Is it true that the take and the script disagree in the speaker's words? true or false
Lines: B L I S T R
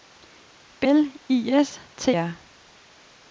false